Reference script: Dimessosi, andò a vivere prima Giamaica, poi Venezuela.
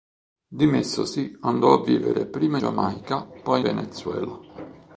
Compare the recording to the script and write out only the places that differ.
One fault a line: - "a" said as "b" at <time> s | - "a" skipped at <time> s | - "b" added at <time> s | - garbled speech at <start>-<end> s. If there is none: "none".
none